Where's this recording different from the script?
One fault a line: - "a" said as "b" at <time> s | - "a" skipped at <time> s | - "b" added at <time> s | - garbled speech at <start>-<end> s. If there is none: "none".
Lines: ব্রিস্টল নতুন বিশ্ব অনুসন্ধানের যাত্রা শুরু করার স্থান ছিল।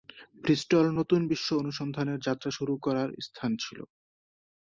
none